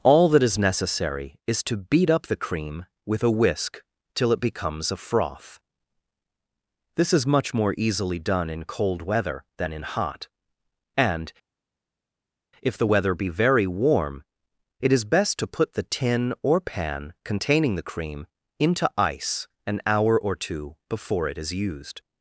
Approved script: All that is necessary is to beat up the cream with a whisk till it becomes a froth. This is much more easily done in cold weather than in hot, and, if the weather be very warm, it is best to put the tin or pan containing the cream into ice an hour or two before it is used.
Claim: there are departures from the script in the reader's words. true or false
false